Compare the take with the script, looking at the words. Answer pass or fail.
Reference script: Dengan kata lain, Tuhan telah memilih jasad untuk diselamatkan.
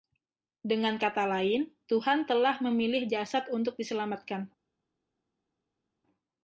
pass